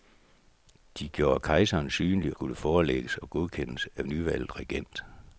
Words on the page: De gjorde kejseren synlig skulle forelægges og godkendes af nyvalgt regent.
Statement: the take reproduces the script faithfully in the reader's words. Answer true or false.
true